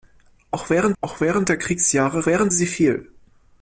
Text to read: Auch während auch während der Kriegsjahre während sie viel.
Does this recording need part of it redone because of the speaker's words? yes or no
no